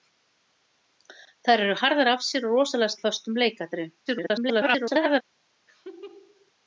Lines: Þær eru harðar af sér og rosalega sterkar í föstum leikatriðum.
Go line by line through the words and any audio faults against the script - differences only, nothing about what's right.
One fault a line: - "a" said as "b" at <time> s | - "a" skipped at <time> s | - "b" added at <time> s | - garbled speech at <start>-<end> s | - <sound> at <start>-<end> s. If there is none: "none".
- "sterkar" skipped at 3.0 s
- garbled speech at 4.1-5.2 s
- laugh at 5.7-6.5 s